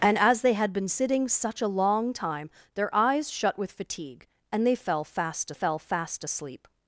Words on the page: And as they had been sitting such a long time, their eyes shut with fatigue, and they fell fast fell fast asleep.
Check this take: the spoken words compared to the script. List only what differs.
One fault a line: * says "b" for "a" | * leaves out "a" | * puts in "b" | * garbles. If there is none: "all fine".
all fine